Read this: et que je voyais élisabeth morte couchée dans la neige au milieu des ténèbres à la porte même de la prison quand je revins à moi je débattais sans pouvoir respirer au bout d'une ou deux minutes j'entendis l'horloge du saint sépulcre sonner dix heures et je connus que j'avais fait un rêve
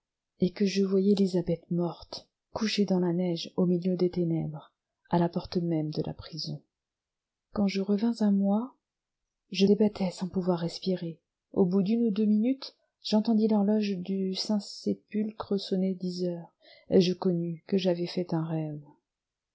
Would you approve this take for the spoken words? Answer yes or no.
yes